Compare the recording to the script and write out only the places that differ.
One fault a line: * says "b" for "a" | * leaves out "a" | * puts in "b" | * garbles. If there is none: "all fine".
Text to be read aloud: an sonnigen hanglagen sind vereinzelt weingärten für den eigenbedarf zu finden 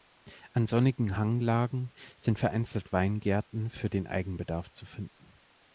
all fine